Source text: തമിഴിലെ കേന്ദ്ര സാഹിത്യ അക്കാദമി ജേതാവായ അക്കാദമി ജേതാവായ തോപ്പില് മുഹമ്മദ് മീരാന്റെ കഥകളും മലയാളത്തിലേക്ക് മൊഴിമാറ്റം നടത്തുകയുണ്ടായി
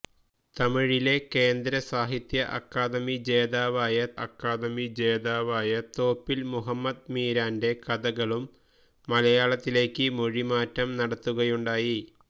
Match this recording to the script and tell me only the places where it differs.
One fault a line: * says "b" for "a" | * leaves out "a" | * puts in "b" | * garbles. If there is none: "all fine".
all fine